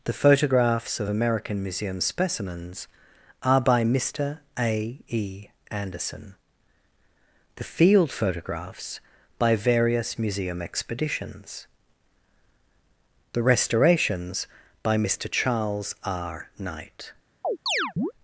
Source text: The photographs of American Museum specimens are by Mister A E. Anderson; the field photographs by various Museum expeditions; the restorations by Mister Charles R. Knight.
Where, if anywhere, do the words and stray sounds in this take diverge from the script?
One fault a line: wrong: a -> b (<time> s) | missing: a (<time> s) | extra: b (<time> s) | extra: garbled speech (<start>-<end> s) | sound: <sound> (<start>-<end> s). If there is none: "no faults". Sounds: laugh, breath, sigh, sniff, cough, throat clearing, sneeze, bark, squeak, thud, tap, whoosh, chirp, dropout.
sound: chirp (17.4-18.1 s)